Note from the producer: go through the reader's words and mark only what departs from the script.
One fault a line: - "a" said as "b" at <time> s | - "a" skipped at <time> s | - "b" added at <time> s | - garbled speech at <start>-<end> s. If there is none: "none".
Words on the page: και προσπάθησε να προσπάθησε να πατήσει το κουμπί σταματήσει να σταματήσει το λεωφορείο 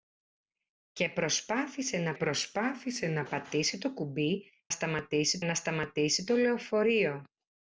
none